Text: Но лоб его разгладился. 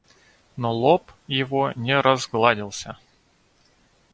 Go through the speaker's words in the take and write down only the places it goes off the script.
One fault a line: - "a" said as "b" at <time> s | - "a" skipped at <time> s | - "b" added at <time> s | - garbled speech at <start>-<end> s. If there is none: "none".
- "не" added at 1.8 s